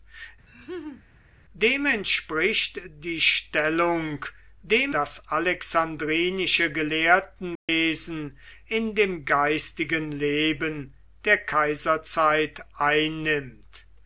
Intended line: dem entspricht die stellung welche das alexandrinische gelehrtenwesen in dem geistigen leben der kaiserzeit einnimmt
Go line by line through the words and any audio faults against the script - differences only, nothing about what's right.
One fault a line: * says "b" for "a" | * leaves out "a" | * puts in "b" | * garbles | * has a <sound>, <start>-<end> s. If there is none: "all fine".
* has a laugh, 0.5-1.0 s
* says "dem" for "welche"
* has a dropout, 7.6-7.7 s